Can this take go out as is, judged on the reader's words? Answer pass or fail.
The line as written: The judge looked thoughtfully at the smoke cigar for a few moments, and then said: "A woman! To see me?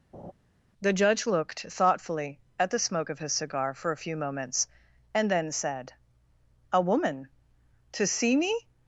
fail